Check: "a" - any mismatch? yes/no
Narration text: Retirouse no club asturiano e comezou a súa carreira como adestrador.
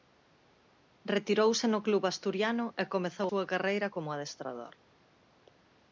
yes